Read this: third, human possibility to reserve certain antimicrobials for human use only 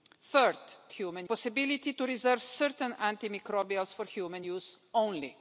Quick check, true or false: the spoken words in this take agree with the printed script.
true